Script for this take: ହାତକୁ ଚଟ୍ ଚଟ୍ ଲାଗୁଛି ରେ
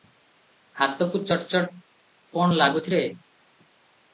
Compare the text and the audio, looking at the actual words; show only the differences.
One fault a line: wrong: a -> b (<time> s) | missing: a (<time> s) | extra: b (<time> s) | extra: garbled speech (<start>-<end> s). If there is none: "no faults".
extra: କଣ (2.3 s)